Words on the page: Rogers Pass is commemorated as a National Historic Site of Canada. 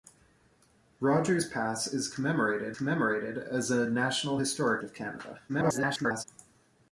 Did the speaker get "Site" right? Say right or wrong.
wrong